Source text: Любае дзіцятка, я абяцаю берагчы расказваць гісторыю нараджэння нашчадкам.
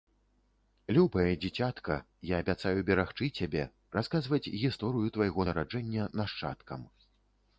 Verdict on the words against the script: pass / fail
fail